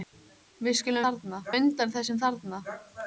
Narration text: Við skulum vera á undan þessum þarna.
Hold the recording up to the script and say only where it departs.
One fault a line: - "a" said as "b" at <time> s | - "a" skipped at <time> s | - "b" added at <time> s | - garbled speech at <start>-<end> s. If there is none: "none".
- "vera" said as "þarna" at 1.1 s